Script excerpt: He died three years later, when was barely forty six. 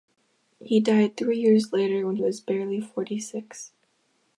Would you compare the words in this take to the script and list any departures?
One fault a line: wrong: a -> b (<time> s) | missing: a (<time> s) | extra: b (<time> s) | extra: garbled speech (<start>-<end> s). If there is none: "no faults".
no faults